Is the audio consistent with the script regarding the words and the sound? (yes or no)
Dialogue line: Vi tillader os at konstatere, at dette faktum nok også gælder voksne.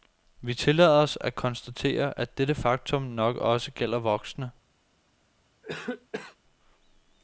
no